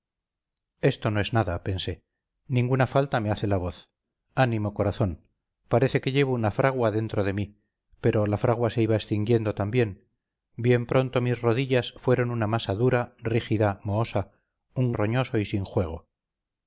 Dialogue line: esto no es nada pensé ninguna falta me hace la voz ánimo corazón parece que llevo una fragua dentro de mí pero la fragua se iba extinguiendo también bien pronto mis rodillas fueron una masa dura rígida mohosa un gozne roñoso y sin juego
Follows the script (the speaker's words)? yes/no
no